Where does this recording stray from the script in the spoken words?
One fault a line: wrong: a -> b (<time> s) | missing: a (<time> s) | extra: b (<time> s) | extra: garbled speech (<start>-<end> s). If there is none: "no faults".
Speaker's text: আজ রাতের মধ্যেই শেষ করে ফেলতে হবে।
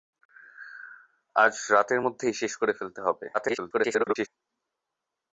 extra: garbled speech (3.3-4.3 s)